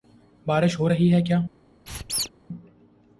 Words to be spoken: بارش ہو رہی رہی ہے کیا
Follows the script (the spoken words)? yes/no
no